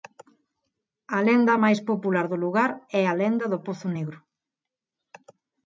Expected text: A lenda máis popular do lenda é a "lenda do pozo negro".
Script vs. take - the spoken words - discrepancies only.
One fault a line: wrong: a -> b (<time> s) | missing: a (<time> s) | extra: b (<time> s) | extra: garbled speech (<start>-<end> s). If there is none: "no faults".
wrong: lenda -> lugar (2.4 s)